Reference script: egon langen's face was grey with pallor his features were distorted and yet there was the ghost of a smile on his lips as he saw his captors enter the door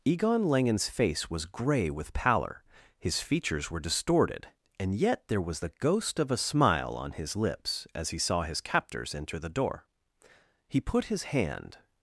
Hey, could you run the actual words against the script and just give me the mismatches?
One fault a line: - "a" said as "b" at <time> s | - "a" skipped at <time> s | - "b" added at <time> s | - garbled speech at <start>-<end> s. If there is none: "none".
- "he put his hand" added at 10.7 s